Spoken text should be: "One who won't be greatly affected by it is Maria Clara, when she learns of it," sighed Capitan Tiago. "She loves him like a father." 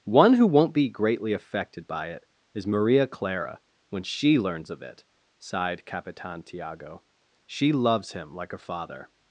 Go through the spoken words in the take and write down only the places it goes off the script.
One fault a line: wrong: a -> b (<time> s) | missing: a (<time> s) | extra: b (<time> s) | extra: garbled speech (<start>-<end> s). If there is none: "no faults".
no faults